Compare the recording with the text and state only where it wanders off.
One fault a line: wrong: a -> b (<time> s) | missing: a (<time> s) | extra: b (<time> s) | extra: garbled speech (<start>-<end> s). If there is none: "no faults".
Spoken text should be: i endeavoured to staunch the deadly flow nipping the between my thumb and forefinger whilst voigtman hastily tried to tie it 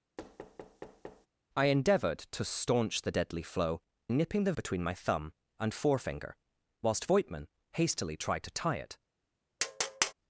no faults